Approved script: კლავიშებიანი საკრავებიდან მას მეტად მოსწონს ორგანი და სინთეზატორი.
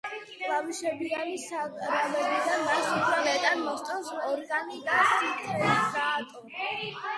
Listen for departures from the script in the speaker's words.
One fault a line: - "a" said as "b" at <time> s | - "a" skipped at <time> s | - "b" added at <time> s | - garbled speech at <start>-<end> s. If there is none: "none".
- "უფრო" added at 2.9 s